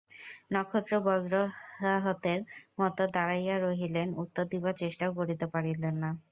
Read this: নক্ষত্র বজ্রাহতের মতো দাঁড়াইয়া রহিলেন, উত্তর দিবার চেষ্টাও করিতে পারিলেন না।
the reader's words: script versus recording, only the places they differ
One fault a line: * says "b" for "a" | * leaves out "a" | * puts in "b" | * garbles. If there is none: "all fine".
all fine